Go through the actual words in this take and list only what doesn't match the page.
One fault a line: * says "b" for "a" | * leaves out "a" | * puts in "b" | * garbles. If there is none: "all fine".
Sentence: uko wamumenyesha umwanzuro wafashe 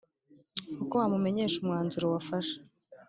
all fine